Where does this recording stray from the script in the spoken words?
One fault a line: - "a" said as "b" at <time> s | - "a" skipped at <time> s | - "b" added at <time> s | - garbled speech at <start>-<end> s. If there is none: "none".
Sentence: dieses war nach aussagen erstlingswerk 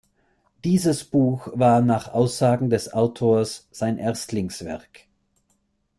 - "buch" added at 1.0 s
- "des autors sein" added at 2.7 s